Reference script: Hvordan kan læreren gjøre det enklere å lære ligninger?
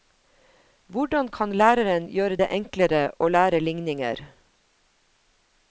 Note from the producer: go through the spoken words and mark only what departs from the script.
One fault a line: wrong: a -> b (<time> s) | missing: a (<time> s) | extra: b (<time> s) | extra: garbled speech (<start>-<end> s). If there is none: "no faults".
no faults